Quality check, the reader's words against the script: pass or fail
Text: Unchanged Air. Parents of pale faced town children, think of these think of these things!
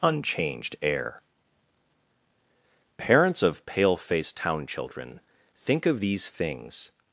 fail